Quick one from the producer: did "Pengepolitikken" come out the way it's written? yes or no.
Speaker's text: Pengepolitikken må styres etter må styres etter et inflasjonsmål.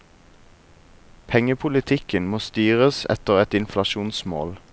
yes